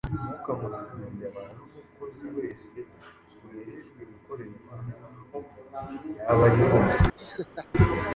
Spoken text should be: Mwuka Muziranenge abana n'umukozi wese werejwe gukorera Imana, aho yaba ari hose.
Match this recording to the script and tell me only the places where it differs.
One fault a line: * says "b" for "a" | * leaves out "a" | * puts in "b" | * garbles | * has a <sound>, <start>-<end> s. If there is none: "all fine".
* has a laugh, 7.2-7.7 s